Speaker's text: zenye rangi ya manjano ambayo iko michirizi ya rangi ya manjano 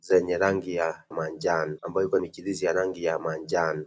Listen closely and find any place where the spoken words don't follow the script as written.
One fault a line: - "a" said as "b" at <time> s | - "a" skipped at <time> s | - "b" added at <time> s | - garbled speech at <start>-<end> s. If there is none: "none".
none